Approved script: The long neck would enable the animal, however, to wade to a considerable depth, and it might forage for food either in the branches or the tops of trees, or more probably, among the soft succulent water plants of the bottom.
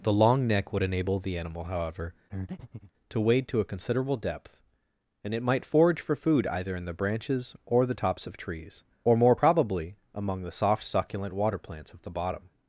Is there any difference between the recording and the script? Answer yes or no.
no